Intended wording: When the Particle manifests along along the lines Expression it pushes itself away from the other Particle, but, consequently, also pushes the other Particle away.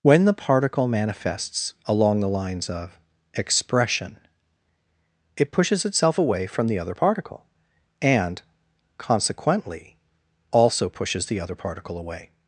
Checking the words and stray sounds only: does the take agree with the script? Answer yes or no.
no